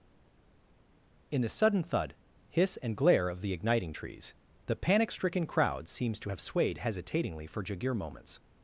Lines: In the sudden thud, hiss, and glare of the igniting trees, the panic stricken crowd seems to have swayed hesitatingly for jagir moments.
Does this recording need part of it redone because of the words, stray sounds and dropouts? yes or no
no